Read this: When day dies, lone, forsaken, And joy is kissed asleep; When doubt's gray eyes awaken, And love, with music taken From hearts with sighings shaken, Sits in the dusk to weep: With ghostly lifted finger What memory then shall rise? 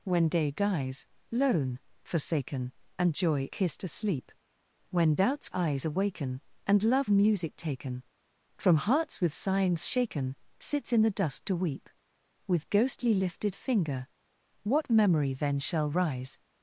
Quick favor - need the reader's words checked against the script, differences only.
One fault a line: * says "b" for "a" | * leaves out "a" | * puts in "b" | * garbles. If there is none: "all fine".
* leaves out "is"
* leaves out "gray"
* leaves out "with"